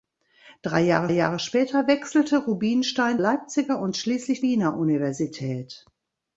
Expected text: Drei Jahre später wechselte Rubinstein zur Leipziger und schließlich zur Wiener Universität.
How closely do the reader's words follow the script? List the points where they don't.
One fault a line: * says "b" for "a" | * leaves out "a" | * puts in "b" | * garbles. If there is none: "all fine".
* puts in "Jahre"
* leaves out "zur"
* leaves out "zur"